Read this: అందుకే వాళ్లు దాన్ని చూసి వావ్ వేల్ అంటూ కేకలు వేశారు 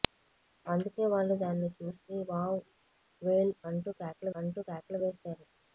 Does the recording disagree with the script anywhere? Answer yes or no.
yes